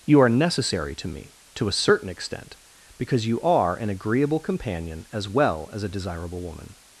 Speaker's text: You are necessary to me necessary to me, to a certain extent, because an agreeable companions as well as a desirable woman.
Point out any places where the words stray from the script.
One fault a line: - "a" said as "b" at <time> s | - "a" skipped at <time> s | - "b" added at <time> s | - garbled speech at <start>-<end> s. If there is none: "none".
- "necessary" skipped at 1.3 s
- "me to" skipped at 1.7 s
- "you are" added at 3.3 s
- "companions" said as "companion" at 4.4 s